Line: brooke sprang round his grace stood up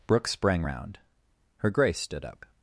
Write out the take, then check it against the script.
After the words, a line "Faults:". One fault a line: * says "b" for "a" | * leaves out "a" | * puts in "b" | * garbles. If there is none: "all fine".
brooke sprang round her grace stood up
Faults:
* says "her" for "his"